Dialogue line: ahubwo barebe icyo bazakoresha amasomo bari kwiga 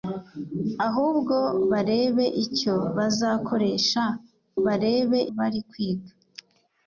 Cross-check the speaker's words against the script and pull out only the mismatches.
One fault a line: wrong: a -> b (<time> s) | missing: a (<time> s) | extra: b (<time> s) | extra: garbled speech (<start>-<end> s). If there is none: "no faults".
wrong: amasomo -> barebe (4.7 s)